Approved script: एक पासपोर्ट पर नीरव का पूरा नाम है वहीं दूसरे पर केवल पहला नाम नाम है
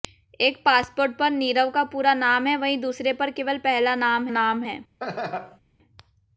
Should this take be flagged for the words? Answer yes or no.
no